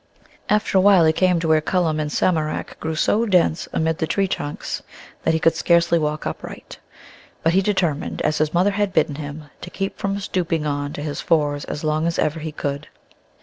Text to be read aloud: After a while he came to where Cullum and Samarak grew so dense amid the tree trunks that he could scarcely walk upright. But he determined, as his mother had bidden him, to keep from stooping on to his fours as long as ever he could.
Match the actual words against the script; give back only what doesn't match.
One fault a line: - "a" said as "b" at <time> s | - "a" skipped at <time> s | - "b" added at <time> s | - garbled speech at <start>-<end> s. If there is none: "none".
none